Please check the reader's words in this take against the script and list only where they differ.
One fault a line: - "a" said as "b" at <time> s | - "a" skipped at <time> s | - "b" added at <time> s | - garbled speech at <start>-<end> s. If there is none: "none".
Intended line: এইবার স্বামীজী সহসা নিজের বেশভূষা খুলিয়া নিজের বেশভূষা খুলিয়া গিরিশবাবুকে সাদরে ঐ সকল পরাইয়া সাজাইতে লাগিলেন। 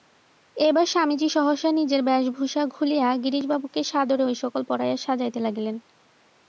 - "নিজের বেশভূষা খুলিয়া" skipped at 3.1 s